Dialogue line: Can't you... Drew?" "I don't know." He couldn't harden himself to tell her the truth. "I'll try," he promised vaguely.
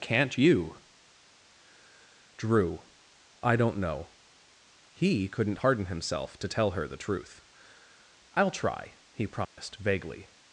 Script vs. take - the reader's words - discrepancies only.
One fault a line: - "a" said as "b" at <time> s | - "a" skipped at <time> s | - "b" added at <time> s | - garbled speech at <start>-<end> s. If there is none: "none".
none